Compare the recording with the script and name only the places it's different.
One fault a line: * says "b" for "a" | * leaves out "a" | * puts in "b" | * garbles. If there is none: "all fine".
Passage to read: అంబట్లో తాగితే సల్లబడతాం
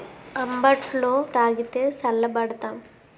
all fine